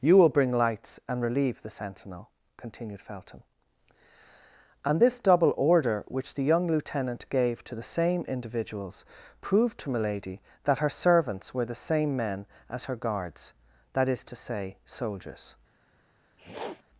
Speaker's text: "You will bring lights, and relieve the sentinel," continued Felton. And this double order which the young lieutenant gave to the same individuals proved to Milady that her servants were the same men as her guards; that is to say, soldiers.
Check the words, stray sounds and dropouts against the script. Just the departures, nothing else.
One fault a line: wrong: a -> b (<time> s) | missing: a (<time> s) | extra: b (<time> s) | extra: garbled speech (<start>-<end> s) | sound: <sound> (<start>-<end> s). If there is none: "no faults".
sound: sniff (16.4-16.8 s)